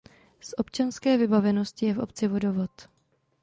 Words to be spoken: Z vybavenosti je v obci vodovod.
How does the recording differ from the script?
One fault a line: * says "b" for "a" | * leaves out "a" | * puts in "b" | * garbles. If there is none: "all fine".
* puts in "občanské"